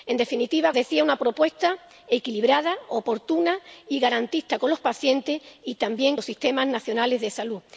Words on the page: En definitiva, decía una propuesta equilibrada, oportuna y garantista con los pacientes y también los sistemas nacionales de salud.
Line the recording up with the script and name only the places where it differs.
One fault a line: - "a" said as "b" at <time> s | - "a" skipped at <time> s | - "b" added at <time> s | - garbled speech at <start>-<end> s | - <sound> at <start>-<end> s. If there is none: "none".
none